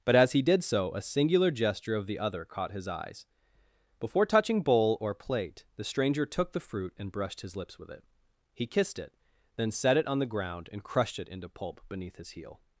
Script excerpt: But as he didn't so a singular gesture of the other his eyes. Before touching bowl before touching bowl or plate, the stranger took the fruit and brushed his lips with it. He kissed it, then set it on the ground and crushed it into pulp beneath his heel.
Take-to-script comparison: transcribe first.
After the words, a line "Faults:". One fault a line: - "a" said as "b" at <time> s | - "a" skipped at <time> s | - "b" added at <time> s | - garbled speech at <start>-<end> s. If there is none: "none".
But as he did so a singular gesture of the other caught his eyes. Before touching bowl or plate, the stranger took the fruit and brushed his lips with it. He kissed it, then set it on the ground and crushed it into pulp beneath his heel.
Faults:
- "didn't" said as "did" at 0.4 s
- "caught" added at 2.5 s
- "before touching bowl" skipped at 5.0 s